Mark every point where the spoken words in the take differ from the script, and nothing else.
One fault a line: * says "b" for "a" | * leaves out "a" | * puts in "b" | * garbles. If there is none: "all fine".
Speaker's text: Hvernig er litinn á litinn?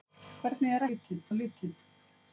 all fine